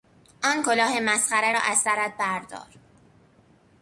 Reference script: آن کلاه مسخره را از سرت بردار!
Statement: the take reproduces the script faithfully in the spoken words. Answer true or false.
true